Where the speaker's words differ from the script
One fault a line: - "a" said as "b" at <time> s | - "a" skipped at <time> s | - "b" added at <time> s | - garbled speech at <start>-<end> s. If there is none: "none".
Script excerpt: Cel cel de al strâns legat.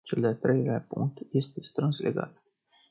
- "cel" skipped at 0.2 s
- "treilea punct este" added at 0.4 s